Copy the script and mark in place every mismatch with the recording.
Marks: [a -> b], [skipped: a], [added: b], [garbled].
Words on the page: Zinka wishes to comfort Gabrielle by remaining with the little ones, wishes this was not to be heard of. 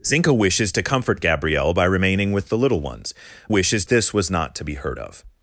Zinka wishes to comfort Gabrielle by remaining with the little ones, wishes this was not to be heard of.